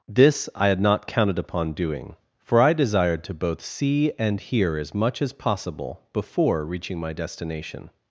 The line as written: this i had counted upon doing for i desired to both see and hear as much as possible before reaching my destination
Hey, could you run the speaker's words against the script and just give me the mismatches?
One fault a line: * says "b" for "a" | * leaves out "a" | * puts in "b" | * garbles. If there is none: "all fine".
* puts in "not"